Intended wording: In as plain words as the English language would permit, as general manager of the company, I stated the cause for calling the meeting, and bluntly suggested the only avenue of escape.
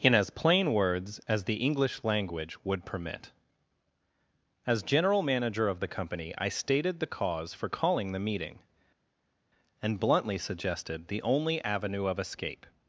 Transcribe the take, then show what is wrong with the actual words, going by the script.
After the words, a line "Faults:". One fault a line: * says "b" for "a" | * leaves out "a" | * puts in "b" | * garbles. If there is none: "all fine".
In as plain words as the English language would permit, as general manager of the company, I stated the cause for calling the meeting, and bluntly suggested the only avenue of escape.
Faults:
all fine